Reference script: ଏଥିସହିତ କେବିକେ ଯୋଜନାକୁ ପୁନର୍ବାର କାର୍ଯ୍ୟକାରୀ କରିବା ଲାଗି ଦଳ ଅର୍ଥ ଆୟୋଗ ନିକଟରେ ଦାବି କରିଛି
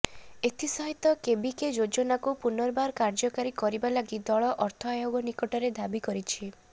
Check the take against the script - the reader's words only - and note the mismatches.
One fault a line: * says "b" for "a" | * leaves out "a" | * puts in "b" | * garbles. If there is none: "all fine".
all fine